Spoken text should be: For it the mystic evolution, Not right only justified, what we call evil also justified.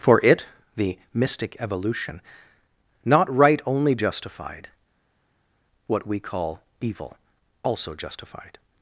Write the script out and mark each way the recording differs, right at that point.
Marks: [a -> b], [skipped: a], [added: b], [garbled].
For it the mystic evolution, Not right only justified, what we call evil also justified.